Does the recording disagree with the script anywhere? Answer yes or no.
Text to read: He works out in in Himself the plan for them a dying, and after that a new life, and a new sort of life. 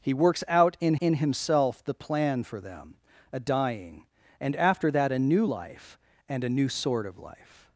no